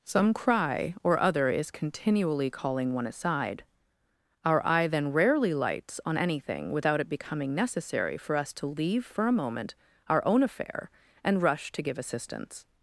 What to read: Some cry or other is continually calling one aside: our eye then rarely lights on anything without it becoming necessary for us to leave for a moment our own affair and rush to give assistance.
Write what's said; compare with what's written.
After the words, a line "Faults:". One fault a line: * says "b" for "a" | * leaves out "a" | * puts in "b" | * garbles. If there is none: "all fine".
Some cry or other is continually calling one aside: our eye then rarely lights on anything without it becoming necessary for us to leave for a moment our own affair and rush to give assistance.
Faults:
all fine